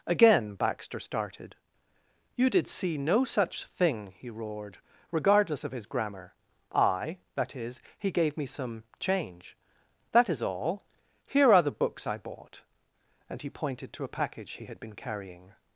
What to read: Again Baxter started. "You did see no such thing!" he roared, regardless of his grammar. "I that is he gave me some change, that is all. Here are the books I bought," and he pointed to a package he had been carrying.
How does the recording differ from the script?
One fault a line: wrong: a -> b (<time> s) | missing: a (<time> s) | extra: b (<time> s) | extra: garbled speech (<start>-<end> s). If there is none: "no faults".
no faults